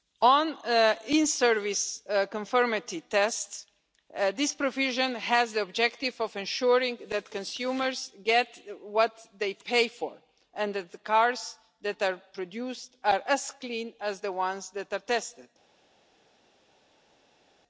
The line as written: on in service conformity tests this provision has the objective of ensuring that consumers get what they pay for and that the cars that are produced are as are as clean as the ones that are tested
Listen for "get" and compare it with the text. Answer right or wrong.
right